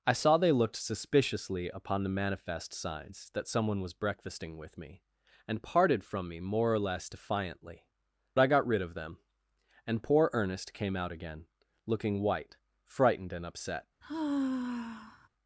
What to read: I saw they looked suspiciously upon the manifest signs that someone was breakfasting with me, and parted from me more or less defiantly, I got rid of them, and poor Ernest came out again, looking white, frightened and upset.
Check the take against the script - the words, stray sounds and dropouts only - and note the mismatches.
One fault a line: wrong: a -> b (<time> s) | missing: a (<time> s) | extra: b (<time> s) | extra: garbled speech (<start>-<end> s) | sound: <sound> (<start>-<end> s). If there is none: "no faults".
sound: sigh (14.0-15.3 s)